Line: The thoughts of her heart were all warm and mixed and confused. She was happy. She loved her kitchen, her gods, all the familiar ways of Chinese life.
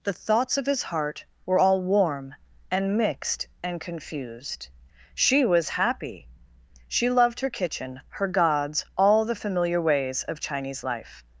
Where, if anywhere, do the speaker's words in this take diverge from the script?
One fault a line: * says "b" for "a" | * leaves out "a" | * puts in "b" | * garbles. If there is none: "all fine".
* says "his" for "her"